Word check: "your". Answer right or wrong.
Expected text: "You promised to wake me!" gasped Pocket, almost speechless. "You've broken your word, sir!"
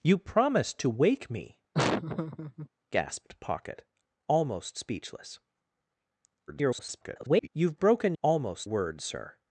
wrong